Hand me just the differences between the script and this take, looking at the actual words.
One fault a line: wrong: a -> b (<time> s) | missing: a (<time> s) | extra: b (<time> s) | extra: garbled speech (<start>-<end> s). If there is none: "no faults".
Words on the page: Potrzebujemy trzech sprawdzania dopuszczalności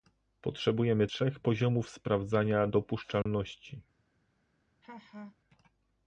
extra: poziomów (1.4 s)